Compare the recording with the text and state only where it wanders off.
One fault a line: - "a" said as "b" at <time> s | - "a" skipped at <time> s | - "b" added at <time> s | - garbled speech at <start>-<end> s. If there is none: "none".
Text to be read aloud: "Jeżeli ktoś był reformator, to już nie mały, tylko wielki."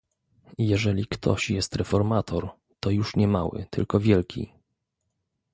- "był" said as "jest" at 1.5 s